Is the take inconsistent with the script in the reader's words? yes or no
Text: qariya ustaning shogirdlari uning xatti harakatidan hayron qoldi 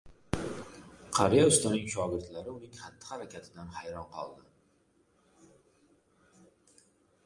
no